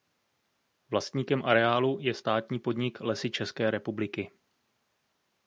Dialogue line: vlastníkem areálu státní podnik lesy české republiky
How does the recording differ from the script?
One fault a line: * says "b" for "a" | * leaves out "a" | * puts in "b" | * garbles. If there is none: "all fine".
* puts in "je"